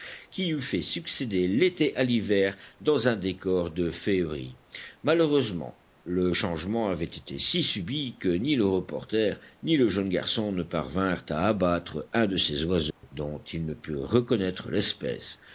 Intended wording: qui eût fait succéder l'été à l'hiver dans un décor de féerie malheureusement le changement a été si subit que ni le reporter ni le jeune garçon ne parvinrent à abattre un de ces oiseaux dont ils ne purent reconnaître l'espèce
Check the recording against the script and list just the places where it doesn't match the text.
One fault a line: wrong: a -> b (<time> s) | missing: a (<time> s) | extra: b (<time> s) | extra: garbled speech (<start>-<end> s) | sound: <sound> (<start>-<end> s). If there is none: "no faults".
wrong: a -> avait (6.9 s)
sound: dropout (12.9-13.0 s)